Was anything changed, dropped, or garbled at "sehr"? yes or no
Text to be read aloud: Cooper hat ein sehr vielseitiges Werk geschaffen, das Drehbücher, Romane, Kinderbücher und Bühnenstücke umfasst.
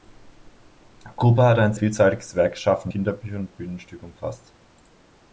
yes